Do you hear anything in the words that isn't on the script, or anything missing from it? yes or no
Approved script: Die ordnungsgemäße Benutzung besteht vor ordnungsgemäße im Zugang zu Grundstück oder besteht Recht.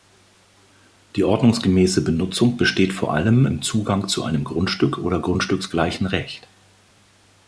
yes